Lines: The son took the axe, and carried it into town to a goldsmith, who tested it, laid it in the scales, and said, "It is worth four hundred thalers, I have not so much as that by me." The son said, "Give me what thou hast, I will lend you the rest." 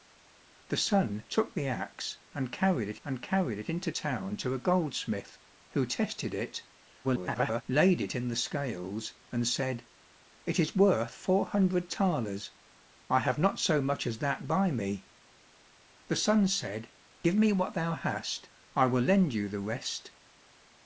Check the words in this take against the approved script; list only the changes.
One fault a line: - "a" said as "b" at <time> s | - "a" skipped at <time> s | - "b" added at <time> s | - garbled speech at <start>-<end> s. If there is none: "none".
- "and carried it" added at 3.0 s
- garbled speech at 7.0-7.6 s